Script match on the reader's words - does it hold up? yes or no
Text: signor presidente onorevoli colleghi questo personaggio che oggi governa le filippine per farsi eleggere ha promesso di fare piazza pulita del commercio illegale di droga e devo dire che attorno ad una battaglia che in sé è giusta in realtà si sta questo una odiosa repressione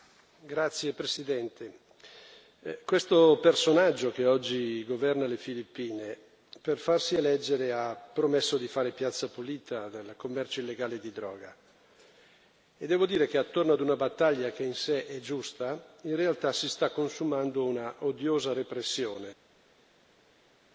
no